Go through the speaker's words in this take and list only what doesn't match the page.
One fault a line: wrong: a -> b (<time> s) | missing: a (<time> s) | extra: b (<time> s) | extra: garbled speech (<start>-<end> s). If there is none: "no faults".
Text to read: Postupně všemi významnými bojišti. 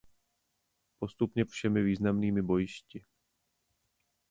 no faults